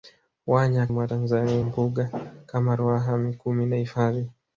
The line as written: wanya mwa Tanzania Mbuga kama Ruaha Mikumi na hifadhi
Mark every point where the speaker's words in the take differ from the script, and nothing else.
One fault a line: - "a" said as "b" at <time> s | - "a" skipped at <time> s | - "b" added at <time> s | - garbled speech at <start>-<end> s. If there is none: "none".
none